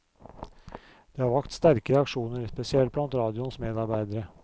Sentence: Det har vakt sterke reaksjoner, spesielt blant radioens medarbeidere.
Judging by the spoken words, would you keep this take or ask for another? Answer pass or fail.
pass